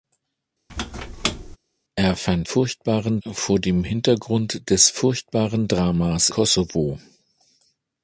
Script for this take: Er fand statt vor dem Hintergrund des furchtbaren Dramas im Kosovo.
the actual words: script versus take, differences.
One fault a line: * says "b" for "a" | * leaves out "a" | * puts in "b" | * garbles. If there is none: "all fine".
* says "furchtbaren" for "statt"
* leaves out "im"